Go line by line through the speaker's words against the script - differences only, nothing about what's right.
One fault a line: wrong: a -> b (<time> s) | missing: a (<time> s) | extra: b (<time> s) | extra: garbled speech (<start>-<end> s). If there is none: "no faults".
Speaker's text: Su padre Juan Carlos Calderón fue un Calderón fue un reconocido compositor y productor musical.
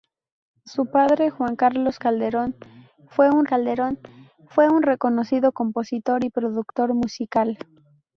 no faults